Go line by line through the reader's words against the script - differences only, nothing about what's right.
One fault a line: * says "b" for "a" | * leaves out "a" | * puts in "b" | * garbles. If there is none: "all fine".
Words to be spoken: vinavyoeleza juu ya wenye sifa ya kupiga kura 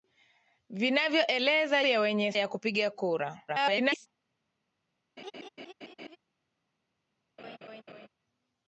* leaves out "juu"
* leaves out "sifa"
* garbles